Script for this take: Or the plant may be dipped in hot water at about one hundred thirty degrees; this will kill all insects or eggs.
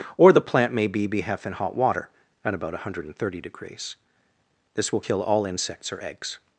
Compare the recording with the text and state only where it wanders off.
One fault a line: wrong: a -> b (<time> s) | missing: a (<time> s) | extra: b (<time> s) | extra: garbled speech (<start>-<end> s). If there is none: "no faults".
wrong: dipped -> behef (1.1 s)